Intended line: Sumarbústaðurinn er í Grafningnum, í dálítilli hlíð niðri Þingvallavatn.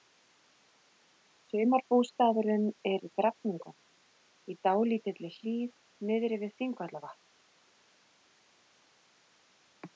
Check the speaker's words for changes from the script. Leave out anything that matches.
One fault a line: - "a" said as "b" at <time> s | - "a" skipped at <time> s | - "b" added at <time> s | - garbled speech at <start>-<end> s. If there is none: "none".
- "við" added at 6.4 s